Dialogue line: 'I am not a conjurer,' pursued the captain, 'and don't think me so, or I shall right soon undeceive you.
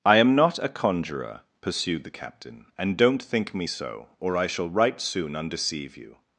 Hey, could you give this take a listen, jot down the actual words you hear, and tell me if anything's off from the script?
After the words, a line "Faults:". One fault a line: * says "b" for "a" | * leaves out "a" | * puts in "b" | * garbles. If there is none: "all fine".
'I am not a conjurer,' pursued the captain, 'and don't think me so, or I shall right soon undeceive you.
Faults:
all fine